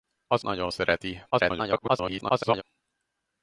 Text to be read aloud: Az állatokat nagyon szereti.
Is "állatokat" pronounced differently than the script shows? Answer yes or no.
yes